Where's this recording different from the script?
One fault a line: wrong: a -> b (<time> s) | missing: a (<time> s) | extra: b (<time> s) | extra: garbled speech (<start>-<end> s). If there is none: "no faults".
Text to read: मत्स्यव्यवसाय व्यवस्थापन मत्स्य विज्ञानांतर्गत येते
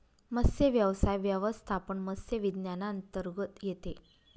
no faults